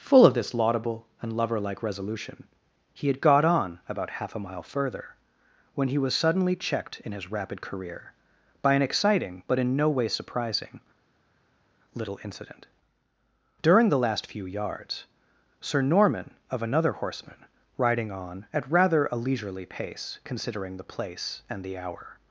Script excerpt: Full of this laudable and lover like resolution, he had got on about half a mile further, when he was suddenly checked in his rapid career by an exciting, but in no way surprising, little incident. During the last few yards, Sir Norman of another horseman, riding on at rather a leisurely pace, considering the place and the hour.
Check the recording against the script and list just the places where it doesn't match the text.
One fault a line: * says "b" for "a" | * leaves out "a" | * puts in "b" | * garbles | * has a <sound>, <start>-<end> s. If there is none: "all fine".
all fine